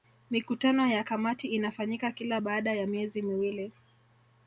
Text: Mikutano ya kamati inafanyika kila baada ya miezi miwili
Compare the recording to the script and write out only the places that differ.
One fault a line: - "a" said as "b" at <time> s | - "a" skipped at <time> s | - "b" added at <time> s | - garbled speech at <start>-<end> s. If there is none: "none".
none